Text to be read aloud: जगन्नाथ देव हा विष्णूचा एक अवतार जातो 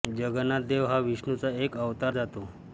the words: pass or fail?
pass